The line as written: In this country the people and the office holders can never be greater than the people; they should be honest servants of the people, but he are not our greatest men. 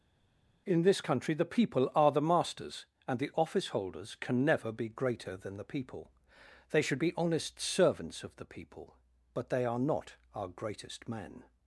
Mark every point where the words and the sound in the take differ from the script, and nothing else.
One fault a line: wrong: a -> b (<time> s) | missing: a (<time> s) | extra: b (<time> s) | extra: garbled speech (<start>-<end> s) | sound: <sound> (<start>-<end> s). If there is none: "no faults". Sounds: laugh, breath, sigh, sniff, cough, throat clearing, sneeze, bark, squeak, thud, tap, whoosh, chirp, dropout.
extra: are the masters (1.9 s)
wrong: he -> they (9.5 s)